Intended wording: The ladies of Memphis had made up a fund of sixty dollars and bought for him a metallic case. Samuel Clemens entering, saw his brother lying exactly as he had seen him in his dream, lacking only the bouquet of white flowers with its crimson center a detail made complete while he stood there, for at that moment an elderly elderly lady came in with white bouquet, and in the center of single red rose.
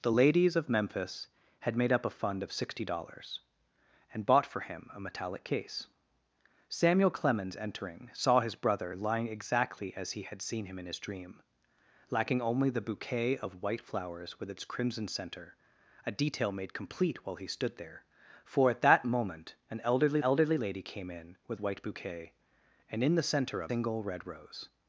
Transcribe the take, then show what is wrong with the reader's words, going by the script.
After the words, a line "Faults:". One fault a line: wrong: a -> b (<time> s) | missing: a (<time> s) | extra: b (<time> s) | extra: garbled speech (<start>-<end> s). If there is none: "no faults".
The ladies of Memphis had made up a fund of sixty dollars and bought for him a metallic case. Samuel Clemens entering, saw his brother lying exactly as he had seen him in his dream, lacking only the bouquet of white flowers with its crimson center a detail made complete while he stood there, for at that moment an elderly elderly lady came in with white bouquet, and in the center of single red rose.
Faults:
no faults